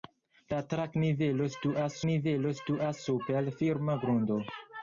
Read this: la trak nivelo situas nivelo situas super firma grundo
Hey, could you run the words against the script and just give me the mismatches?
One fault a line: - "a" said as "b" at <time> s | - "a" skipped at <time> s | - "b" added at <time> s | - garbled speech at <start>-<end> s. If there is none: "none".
none